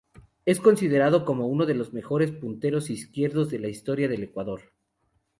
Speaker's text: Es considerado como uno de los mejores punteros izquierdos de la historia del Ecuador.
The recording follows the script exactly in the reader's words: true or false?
true